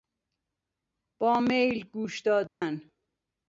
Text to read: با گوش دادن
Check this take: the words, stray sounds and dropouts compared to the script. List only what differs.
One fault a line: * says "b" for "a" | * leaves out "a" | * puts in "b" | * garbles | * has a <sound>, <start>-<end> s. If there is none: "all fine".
* puts in "میل"
* has a dropout, 2.5-2.6 s